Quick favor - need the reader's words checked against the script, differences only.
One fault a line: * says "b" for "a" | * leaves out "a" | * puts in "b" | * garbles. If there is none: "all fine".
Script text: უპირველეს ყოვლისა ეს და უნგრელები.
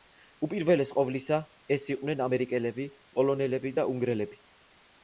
* puts in "იყვნენ ამერიკელები პოლონელები"